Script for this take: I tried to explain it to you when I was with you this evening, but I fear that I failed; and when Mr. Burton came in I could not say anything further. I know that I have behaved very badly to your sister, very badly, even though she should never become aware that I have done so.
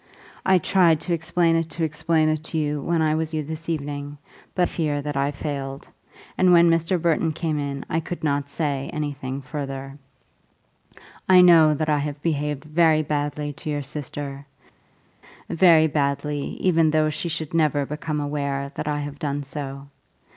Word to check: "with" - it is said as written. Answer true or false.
false